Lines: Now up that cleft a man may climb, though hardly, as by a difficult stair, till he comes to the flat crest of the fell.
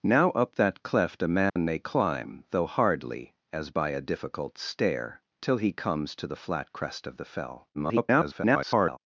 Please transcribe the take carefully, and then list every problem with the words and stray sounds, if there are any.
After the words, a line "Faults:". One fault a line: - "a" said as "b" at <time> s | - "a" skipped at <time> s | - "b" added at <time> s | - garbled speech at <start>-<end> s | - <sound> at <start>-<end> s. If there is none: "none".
Now up that cleft a man may climb, though hardly, as by a difficult stair, till he comes to the flat crest of the fell. [garbled]
Faults:
- dropout at 1.5-1.6 s
- garbled speech at 7.7-9.0 s